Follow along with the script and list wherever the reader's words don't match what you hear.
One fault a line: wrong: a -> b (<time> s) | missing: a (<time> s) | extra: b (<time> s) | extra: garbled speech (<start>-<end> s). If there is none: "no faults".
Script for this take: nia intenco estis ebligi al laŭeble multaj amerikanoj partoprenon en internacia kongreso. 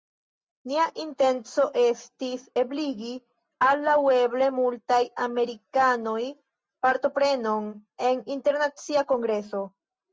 no faults